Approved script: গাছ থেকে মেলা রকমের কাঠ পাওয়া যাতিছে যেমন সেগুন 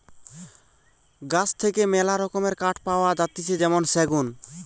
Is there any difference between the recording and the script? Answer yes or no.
no